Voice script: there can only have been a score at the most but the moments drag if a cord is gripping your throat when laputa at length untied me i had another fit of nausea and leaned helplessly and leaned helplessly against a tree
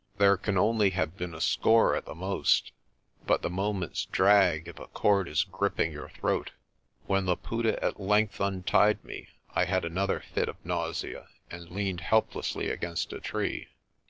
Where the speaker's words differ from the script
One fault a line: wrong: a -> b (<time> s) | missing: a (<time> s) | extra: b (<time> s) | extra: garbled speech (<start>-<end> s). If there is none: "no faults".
missing: and leaned helplessly (12.7 s)